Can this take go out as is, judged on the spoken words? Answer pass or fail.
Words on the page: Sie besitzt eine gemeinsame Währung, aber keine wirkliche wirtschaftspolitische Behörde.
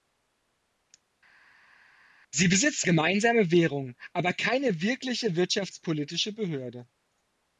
fail